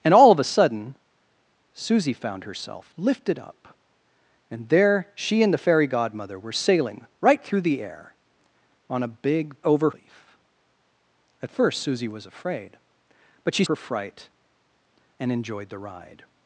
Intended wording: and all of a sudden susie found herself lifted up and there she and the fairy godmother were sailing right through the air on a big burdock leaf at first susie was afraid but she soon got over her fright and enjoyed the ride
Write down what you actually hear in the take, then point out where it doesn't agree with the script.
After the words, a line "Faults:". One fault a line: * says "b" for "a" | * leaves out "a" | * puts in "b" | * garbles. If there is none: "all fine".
and all of a sudden susie found herself lifted up and there she and the fairy godmother were sailing right through the air on a big over leaf at first susie was afraid but she her fright and enjoyed the ride
Faults:
* says "over" for "burdock"
* leaves out "soon got over"